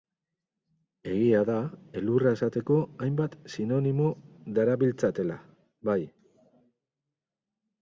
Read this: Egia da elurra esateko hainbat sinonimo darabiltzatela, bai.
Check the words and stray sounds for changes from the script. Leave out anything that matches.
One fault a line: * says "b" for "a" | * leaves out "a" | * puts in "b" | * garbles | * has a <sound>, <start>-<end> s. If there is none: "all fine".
all fine